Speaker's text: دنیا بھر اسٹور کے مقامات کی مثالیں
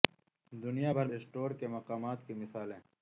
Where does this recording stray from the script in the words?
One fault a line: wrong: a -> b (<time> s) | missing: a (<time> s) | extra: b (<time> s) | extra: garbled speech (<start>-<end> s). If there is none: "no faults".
no faults